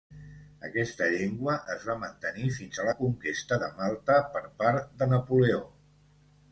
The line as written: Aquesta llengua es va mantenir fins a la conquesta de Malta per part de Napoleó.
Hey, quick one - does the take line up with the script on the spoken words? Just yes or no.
yes